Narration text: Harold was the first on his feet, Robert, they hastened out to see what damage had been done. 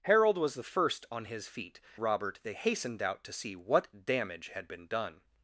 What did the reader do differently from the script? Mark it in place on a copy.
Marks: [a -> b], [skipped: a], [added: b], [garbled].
Harold was the first on his feet, Robert, they hastened out to see what damage had been done.